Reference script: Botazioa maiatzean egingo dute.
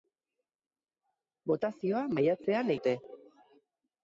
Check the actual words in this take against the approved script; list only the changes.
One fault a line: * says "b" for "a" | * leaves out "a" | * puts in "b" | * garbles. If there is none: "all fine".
* leaves out "egingo"